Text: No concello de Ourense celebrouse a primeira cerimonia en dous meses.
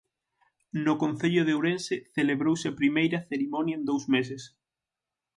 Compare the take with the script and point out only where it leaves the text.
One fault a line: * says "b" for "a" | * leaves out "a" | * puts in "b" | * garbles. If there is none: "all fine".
all fine